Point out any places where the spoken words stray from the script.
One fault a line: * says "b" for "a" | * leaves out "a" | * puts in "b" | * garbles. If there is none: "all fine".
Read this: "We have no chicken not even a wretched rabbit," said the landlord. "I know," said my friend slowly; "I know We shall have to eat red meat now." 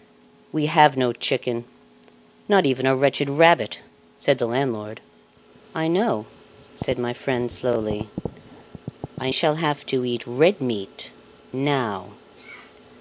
* leaves out "know We"